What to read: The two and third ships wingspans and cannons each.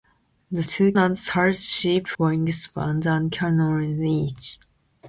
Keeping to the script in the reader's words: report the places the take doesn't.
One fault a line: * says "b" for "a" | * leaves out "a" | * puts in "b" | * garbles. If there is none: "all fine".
all fine